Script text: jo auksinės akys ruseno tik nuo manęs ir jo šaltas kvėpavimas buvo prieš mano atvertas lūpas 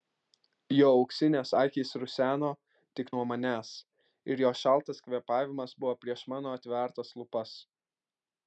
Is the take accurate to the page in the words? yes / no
yes